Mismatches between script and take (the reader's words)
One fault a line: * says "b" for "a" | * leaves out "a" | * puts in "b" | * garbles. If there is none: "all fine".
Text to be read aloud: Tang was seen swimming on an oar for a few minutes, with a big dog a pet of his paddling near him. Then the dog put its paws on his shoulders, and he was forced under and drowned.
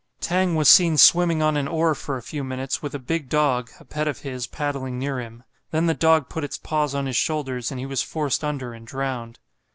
all fine